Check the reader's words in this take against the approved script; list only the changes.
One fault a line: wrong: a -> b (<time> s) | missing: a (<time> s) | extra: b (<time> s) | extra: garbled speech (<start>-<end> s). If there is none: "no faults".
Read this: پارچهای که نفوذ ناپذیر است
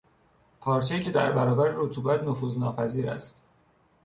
extra: در برابر رطوبت (1.1 s)